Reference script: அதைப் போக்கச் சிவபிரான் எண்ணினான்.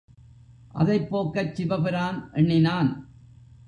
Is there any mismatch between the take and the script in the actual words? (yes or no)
no